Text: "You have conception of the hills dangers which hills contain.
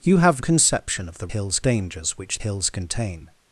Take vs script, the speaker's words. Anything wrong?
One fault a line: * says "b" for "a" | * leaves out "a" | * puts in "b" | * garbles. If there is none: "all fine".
all fine